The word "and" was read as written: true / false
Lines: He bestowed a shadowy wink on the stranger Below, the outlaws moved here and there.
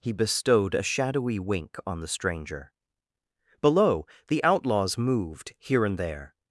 true